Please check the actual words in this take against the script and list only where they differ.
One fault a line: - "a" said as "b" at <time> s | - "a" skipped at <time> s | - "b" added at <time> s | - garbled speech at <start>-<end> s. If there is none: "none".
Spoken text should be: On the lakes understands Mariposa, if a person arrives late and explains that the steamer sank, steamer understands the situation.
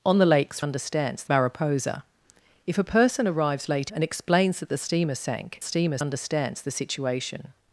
none